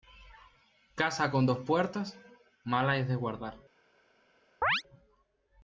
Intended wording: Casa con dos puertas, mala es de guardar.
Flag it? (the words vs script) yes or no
no